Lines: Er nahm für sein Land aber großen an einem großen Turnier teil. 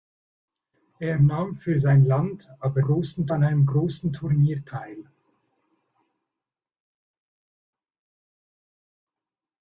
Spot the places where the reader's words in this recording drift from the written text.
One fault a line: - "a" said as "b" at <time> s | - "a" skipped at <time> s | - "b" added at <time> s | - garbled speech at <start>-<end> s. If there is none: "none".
none